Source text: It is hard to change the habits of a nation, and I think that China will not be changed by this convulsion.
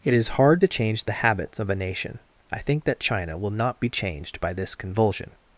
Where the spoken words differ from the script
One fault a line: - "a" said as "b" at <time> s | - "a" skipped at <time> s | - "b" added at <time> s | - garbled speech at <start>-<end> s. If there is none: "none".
- "and" skipped at 2.2 s